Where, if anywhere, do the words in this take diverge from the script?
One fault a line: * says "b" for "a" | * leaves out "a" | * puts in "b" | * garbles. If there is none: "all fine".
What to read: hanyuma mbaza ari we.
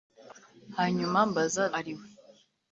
all fine